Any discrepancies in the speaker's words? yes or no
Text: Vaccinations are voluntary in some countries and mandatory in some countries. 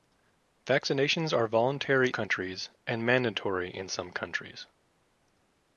yes